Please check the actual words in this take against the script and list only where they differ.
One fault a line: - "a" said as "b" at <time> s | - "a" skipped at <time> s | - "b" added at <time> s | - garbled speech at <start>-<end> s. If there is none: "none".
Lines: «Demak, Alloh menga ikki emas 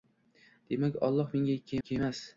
- "ikki" added at 1.8 s